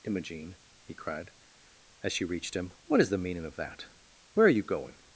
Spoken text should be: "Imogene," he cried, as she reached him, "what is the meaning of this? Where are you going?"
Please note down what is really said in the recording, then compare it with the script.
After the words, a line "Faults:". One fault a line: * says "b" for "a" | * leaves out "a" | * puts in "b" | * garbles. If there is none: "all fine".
"Imogene," he cried, as she reached him, "what is the meaning of that? Where are you going?"
Faults:
* says "that" for "this"